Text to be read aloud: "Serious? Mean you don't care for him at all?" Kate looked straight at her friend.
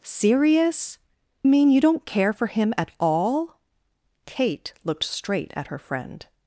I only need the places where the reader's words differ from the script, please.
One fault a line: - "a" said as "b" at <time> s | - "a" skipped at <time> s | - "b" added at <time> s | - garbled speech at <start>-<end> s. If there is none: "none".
none